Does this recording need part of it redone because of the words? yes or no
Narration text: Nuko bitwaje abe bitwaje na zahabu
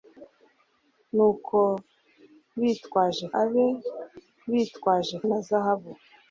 no